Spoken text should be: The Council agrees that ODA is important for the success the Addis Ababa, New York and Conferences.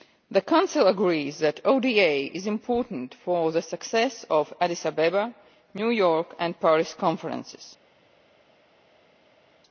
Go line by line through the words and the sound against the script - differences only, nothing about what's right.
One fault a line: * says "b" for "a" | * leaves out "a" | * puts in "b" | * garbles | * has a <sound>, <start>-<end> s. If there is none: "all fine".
* puts in "of"
* puts in "Paris"